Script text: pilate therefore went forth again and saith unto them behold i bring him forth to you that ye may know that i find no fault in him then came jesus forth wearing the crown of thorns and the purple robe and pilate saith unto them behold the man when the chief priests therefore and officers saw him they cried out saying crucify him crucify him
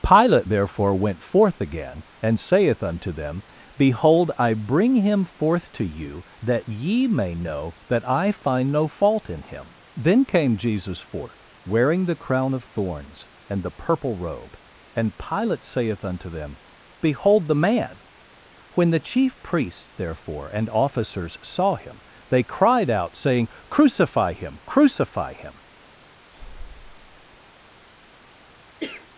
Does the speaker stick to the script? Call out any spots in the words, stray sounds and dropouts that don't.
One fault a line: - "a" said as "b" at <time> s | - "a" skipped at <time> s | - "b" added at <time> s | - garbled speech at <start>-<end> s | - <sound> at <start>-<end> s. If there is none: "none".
- breath at 26.3-27.4 s
- cough at 28.8-29.1 s